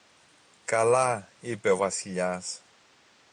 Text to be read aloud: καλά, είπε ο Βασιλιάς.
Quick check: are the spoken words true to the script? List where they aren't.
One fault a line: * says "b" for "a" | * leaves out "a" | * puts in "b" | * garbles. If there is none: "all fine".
all fine